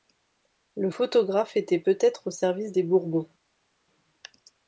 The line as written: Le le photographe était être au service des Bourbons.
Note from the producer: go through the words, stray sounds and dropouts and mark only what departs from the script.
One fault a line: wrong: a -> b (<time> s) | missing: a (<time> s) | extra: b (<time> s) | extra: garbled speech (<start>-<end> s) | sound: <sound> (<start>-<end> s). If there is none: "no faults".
missing: le (0.9 s)
extra: peut (1.8 s)